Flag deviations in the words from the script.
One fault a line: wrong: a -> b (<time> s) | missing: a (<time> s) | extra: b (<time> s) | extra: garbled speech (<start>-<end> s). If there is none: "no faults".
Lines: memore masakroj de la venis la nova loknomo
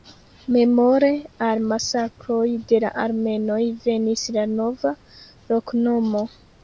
extra: al (1.5 s)
extra: armenoj (3.0 s)